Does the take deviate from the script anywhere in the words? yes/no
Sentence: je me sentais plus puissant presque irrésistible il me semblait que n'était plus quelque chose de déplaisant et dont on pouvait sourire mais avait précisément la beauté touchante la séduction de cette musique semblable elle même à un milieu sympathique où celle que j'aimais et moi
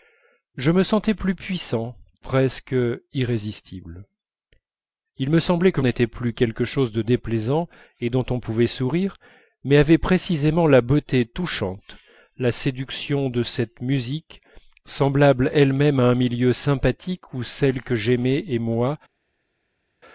no